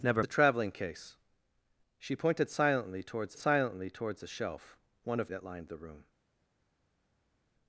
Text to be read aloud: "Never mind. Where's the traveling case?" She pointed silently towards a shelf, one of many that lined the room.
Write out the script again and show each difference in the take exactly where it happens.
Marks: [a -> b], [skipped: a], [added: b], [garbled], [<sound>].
"Never [skipped: mind. Where's] the traveling case?" She pointed silently towards [added: silently towards] a shelf, one of [skipped: many] that lined the room.